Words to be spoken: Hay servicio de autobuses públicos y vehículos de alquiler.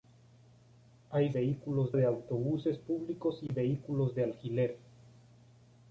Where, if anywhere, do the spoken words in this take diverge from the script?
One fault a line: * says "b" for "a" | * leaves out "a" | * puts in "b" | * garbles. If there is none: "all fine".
* says "vehículos" for "servicio"